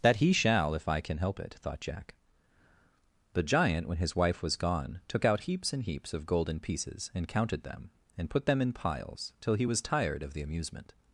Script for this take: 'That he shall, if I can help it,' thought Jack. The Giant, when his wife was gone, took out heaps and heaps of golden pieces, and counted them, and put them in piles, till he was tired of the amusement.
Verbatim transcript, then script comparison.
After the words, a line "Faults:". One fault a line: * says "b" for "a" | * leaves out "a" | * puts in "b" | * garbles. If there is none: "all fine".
'That he shall, if I can help it,' thought Jack. The Giant, when his wife was gone, took out heaps and heaps of golden pieces, and counted them, and put them in piles, till he was tired of the amusement.
Faults:
all fine